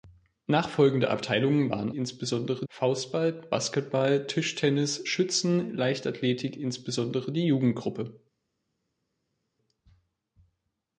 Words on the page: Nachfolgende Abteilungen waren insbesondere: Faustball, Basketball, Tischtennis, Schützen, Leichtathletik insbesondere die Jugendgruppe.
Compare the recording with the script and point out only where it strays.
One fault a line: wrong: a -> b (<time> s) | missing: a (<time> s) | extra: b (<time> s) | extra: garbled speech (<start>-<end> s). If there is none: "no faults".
no faults